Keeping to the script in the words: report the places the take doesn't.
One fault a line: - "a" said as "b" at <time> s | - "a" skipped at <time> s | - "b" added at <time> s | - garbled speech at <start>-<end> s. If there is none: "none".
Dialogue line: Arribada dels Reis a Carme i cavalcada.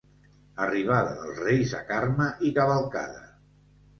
none